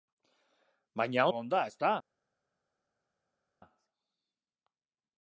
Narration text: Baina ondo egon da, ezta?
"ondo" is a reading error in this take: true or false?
true